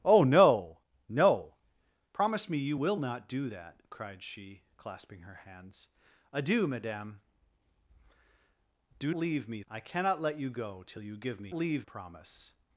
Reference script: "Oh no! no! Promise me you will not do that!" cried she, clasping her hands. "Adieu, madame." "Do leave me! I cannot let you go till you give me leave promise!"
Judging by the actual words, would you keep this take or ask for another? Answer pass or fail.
pass